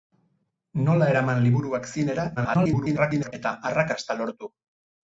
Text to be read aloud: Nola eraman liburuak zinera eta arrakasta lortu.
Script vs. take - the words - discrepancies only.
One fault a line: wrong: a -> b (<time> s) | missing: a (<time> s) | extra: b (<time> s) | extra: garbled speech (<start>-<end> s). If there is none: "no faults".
extra: garbled speech (2.4-3.3 s)